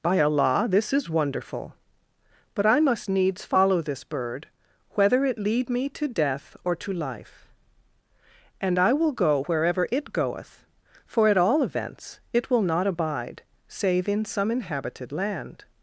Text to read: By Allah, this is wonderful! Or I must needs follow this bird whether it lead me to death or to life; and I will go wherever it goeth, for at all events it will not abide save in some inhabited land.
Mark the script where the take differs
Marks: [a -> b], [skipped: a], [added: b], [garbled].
By Allah, this is wonderful! [Or -> But] I must needs follow this bird whether it lead me to death or to life; and I will go wherever it goeth, for at all events it will not abide save in some inhabited land.